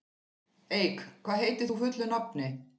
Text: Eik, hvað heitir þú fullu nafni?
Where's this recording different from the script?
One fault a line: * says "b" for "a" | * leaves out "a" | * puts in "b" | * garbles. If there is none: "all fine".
all fine